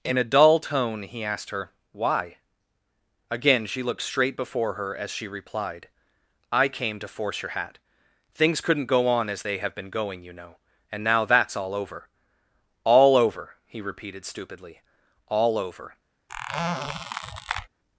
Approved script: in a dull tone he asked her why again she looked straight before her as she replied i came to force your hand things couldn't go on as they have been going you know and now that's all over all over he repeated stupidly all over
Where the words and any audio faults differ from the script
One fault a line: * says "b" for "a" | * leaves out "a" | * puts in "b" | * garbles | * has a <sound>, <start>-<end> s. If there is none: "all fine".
* says "hat" for "hand"
* has a squeak, 16.3-17.7 s